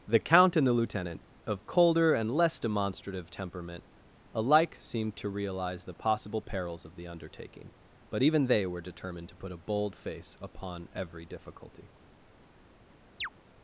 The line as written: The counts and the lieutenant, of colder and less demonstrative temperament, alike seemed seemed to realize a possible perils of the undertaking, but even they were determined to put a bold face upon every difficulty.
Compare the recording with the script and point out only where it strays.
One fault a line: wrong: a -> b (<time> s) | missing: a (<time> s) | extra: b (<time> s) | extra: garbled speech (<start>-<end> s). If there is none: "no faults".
wrong: counts -> count (0.2 s)
missing: seemed (5.2 s)
wrong: a -> the (5.8 s)